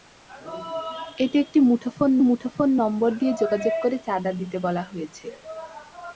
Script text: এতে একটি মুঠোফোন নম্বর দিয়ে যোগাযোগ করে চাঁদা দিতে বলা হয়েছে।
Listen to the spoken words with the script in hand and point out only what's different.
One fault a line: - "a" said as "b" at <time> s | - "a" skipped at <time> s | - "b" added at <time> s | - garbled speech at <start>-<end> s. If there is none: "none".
- "মুঠোফোন" added at 2.3 s